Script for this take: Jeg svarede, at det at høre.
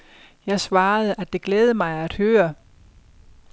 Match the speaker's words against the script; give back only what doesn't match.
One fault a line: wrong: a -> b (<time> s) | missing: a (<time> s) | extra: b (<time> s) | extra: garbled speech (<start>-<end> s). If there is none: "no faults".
extra: glædede mig (1.4 s)